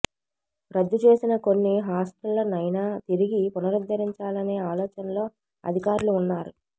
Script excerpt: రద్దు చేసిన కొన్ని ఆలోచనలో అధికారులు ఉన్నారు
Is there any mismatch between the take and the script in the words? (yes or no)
yes